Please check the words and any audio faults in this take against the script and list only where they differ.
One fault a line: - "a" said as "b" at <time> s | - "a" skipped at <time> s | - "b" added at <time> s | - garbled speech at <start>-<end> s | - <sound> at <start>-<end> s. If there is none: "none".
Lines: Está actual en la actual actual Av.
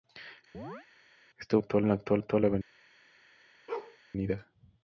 - chirp at 0.5-0.9 s
- bark at 3.7-4.0 s